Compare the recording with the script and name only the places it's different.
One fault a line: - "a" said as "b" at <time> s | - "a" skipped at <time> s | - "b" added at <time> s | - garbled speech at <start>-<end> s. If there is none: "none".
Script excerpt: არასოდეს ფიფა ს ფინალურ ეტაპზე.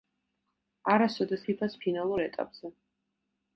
none